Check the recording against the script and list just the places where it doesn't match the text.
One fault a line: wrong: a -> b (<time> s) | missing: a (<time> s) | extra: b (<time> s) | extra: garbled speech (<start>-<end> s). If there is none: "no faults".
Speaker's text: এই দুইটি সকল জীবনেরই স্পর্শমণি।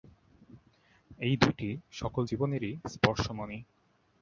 no faults